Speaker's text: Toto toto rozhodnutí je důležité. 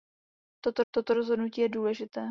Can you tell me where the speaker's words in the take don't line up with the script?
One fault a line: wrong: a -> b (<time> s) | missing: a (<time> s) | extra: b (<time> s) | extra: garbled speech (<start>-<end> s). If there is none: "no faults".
no faults